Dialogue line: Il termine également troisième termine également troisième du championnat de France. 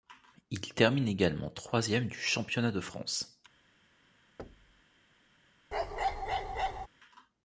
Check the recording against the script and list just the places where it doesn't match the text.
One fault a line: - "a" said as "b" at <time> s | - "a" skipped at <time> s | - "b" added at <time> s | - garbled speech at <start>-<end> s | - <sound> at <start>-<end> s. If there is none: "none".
- "termine également troisième" skipped at 2.1 s
- thud at 4.4-4.8 s
- bark at 5.7-6.9 s